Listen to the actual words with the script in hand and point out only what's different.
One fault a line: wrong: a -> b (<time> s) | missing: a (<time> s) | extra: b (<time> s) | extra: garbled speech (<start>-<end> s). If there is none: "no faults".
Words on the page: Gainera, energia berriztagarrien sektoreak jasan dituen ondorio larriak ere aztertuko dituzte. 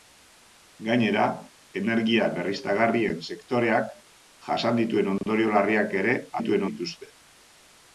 wrong: aztertuko -> dituen (6.4 s)